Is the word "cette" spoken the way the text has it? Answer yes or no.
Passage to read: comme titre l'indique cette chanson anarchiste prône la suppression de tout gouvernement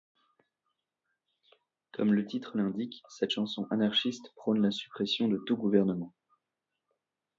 yes